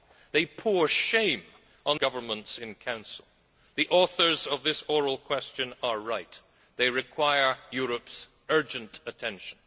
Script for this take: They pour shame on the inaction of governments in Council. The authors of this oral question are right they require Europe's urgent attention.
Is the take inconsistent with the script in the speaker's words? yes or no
yes